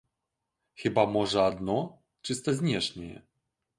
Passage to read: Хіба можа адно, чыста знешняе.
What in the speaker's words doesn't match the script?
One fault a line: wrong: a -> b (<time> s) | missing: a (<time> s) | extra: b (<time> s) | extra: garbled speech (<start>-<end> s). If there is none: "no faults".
no faults